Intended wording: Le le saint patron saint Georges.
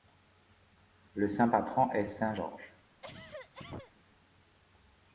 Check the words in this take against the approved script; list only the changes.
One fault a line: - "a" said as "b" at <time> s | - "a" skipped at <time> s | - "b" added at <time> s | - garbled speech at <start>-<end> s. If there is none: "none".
- "le" skipped at 1.3 s
- "est" added at 1.9 s